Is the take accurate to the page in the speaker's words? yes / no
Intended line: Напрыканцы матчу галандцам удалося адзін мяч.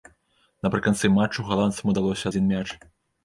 yes